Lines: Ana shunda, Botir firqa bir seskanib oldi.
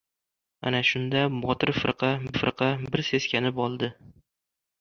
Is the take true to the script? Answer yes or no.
no